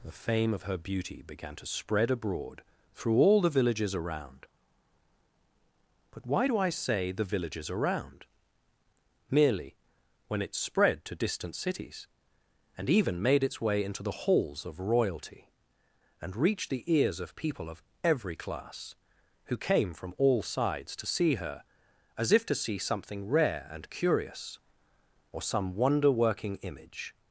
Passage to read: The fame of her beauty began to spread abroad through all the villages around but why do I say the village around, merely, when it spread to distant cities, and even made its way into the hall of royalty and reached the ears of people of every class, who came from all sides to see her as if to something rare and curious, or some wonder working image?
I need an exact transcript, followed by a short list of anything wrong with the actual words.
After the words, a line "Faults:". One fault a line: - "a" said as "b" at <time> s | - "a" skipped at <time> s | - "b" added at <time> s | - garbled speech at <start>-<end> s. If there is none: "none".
The fame of her beauty began to spread abroad through all the villages around but why do I say the villages around, merely, when it spread to distant cities, and even made its way into the halls of royalty and reached the ears of people of every class, who came from all sides to see her as if to see something rare and curious, or some wonder working image?
Faults:
- "village" said as "villages" at 7.2 s
- "hall" said as "halls" at 14.2 s
- "see" added at 22.5 s